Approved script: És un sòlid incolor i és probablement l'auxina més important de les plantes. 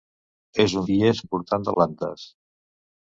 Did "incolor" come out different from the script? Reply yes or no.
yes